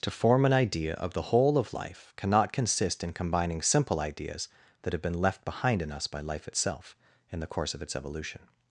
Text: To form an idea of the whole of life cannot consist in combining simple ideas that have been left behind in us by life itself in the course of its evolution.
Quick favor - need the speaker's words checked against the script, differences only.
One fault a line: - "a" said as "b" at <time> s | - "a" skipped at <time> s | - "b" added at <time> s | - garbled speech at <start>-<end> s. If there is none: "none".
none